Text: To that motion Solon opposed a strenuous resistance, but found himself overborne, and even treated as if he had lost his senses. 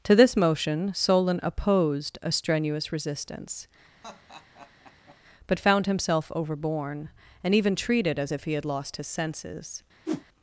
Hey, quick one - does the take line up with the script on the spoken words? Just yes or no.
no